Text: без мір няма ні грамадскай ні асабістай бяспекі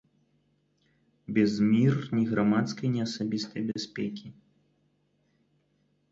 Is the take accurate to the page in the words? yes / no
no